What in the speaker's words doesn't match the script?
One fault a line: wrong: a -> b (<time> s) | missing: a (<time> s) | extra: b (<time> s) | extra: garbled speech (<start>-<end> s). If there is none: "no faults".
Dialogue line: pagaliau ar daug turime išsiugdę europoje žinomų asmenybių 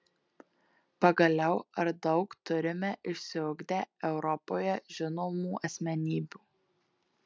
no faults